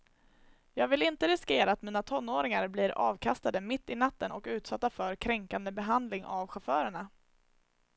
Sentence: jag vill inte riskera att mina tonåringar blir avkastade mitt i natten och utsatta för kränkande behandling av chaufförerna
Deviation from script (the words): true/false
false